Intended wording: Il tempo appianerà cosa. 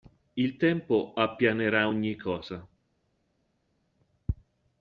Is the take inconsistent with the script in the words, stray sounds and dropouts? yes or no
yes